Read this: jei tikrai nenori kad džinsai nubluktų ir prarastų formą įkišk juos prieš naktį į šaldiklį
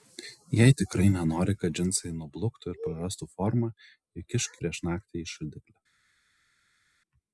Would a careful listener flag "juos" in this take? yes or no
yes